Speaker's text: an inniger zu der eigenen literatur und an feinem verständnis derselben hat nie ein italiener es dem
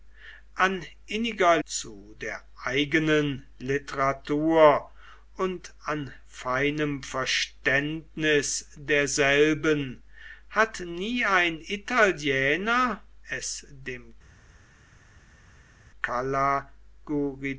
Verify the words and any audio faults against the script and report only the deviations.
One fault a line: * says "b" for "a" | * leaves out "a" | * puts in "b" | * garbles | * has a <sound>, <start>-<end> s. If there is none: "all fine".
all fine